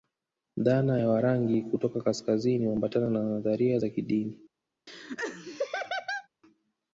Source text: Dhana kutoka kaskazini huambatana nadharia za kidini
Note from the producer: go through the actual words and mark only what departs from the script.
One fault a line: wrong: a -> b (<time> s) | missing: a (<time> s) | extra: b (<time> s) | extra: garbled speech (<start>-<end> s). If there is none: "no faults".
extra: ya Warangi (1.0 s)
extra: na (3.1 s)